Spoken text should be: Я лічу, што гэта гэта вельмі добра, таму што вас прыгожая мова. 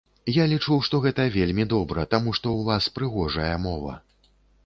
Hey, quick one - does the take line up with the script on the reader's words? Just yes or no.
no